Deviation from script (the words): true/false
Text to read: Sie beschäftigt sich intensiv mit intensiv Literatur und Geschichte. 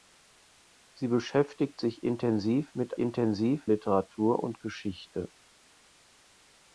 false